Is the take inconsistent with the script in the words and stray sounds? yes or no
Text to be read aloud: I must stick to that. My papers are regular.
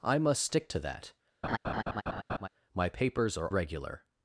yes